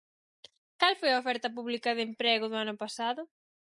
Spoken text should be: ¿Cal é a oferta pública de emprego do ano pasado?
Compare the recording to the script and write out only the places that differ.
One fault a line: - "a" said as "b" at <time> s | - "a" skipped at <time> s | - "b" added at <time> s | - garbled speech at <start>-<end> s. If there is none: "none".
- "é" said as "foi" at 1.0 s